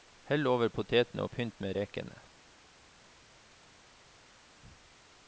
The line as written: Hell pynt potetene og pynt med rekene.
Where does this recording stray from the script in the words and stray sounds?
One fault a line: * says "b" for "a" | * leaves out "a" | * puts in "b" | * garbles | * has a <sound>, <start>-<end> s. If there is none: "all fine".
* says "over" for "pynt"